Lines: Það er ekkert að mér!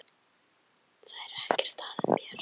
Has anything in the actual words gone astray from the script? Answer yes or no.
no